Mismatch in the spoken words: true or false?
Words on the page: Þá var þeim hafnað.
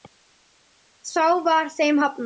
false